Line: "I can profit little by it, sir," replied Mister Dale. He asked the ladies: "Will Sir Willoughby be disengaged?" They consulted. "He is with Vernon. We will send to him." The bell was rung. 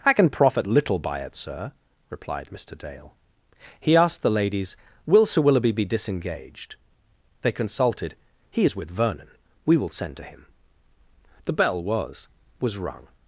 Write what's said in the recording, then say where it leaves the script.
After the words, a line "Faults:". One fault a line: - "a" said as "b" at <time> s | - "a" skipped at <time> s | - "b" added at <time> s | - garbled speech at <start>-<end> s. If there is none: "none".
"I can profit little by it, sir," replied Mister Dale. He asked the ladies: "Will Sir Willoughby be disengaged?" They consulted. "He is with Vernon. We will send to him." The bell was was rung.
Faults:
- "was" added at 12.6 s